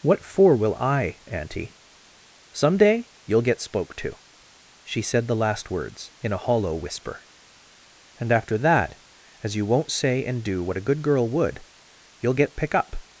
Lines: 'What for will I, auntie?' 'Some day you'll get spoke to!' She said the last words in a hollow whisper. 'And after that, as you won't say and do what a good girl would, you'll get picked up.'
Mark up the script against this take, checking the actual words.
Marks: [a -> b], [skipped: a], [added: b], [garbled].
'What for will I, auntie?' 'Some day you'll get spoke to!' She said the last words in a hollow whisper. 'And after that, as you won't say and do what a good girl would, you'll get [picked -> pick] up.'